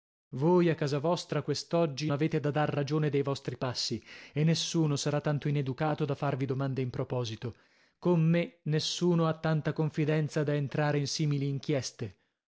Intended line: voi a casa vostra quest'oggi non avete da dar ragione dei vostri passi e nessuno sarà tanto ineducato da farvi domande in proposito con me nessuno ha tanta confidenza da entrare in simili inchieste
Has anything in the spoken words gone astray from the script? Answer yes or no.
yes